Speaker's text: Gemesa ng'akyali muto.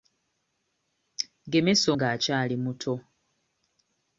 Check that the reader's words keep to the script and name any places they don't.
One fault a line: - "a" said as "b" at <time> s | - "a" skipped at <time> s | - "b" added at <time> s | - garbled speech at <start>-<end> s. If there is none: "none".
none